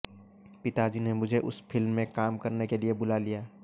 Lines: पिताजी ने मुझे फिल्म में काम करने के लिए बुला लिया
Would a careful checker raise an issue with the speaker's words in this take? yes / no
yes